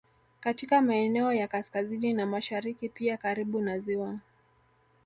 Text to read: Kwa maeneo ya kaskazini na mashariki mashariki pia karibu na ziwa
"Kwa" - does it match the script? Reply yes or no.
no